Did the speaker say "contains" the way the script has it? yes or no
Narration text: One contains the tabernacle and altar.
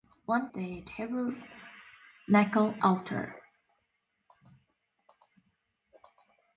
no